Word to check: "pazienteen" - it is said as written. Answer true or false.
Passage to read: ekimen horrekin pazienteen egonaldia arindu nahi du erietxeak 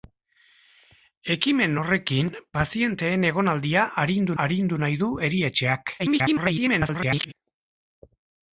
true